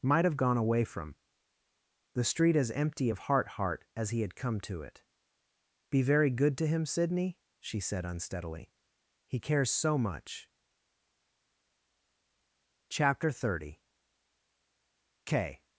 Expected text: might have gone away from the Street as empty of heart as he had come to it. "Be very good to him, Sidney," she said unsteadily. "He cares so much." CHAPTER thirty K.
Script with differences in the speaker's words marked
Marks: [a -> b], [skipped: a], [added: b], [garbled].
might have gone away from the Street as empty of heart [added: heart] as he had come to it. "Be very good to him, Sidney," she said unsteadily. "He cares so much." CHAPTER thirty K.